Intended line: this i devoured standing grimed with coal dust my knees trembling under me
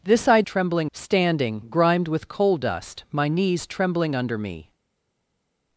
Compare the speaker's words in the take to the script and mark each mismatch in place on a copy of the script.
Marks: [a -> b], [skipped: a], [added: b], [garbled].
this i [devoured -> trembling] standing grimed with coal dust my knees trembling under me